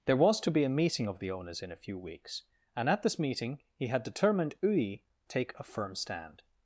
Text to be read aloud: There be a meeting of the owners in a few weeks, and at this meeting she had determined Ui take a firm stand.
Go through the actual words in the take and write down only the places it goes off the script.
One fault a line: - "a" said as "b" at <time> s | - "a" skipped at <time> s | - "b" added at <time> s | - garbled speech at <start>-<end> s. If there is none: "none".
- "was to" added at 0.2 s
- "she" said as "he" at 3.8 s